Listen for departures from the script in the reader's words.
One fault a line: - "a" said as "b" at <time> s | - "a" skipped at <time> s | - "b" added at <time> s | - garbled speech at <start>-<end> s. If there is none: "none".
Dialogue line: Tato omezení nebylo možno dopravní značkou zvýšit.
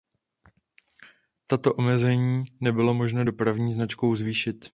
none